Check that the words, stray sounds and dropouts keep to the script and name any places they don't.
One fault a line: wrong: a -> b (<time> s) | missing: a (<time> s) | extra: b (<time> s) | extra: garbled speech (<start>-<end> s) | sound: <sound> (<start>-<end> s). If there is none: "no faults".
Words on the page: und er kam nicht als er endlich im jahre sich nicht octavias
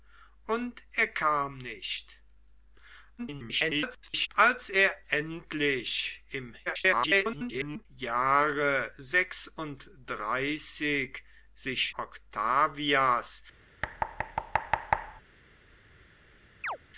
extra: garbled speech (3.2-4.3 s)
extra: garbled speech (6.7-7.9 s)
missing: nicht (11.9 s)
sound: thud (13.8-15.2 s)
sound: chirp (16.6-16.8 s)